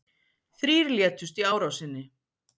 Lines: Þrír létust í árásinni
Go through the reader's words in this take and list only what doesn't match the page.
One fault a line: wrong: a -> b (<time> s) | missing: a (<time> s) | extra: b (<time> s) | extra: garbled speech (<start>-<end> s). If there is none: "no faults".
no faults